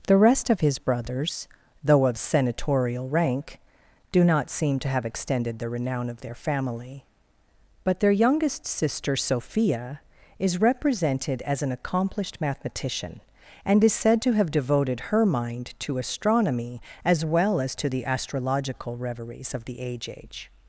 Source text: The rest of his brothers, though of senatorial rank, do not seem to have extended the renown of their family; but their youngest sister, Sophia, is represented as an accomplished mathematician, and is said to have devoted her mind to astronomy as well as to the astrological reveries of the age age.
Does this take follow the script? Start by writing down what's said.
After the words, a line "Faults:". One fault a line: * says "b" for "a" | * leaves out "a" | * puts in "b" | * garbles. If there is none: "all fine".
The rest of his brothers, though of senatorial rank, do not seem to have extended the renown of their family; but their youngest sister, Sophia, is represented as an accomplished mathematician, and is said to have devoted her mind to astronomy as well as to the astrological reveries of the age age.
Faults:
all fine